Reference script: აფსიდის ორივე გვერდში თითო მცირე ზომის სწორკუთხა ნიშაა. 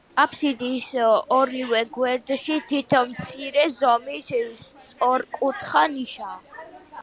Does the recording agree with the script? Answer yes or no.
yes